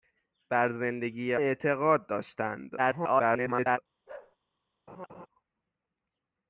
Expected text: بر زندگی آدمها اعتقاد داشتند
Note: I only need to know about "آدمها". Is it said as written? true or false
false